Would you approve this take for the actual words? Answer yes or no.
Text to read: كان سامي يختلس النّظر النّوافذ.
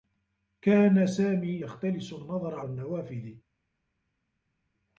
yes